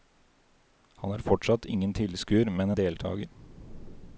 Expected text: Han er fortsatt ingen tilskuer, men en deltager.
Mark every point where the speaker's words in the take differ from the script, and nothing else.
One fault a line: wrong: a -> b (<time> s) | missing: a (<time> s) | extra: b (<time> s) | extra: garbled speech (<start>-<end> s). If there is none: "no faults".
no faults